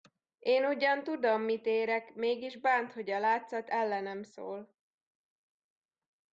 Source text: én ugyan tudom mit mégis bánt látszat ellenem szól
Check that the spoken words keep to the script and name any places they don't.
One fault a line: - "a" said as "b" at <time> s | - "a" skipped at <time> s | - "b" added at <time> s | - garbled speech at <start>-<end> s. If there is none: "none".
- "érek" added at 1.6 s
- "hogy a" added at 2.9 s